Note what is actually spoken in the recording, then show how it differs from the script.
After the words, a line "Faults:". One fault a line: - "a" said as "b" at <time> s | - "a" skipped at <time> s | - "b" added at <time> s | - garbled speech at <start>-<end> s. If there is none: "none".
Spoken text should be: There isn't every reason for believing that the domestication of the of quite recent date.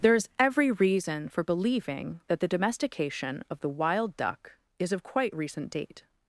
There is every reason for believing that the domestication of the wild duck is of quite recent date.
Faults:
- "isn't" said as "is" at 0.1 s
- "wild duck is" added at 3.7 s